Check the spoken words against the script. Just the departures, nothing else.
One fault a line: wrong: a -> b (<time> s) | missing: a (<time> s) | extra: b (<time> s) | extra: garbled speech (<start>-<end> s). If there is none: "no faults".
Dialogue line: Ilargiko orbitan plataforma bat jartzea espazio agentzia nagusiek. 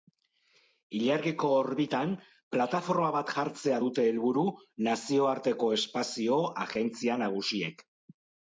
extra: dute helburu nazioarteko (3.8 s)